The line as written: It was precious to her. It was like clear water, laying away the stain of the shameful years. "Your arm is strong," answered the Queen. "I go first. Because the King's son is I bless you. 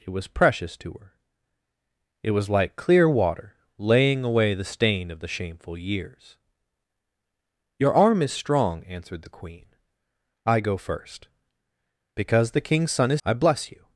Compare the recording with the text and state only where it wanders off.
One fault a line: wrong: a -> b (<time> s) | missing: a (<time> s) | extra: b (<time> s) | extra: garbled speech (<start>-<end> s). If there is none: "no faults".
no faults